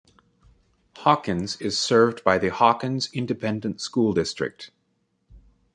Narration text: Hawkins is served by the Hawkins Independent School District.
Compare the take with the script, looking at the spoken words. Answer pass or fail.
pass